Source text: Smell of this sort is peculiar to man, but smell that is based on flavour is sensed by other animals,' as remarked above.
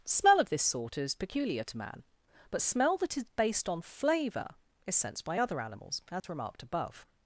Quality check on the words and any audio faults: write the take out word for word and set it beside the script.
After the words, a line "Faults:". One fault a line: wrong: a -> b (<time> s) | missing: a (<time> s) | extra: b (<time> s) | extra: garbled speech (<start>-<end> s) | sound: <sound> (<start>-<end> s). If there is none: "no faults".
Smell of this sort is peculiar to man, but smell that is based on flavour is sensed by other animals,' as remarked above.
Faults:
sound: dropout (6.2-6.2 s)